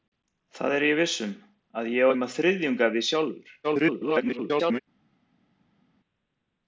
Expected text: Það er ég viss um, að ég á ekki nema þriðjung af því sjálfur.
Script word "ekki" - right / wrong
wrong